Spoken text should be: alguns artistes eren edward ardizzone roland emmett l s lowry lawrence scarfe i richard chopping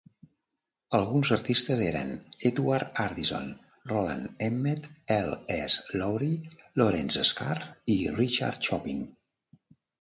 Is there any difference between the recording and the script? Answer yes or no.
no